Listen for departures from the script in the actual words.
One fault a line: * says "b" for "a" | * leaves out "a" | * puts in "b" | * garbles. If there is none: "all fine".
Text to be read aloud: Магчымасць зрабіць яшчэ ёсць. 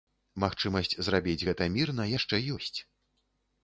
* puts in "гэта мірна"